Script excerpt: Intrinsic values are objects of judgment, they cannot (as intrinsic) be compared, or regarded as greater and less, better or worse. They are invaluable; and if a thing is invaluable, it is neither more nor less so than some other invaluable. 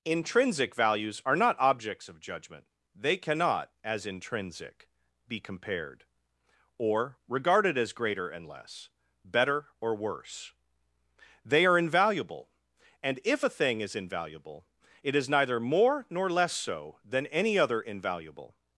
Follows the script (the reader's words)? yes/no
no